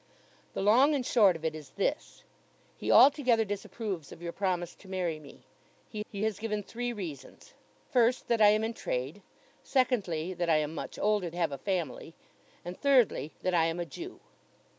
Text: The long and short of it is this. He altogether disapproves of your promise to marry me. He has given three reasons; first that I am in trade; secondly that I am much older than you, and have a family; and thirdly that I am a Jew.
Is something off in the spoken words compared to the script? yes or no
yes